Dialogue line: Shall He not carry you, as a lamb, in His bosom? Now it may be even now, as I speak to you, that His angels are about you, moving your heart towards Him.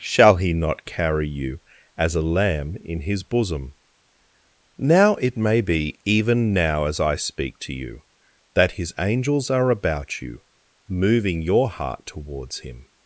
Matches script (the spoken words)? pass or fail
pass